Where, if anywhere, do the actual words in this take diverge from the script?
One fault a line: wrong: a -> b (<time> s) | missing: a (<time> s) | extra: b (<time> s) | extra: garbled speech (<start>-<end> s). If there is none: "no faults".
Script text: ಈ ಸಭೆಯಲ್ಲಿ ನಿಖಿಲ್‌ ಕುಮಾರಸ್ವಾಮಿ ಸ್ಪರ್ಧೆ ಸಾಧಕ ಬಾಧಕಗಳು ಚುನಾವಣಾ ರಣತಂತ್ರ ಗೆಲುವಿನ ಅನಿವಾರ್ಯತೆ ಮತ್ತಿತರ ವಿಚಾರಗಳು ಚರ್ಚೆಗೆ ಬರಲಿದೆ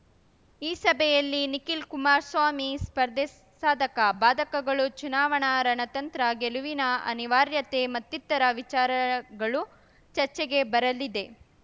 no faults